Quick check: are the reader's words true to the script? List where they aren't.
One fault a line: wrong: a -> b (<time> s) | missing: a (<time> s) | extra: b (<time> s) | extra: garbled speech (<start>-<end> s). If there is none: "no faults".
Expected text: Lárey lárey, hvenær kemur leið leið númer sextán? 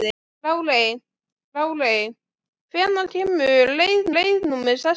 no faults